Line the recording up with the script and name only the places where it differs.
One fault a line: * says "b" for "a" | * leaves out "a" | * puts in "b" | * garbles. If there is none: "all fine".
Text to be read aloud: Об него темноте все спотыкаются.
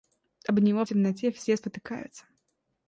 all fine